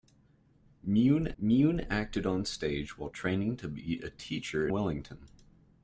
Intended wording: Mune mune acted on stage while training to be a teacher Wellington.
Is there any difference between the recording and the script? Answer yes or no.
no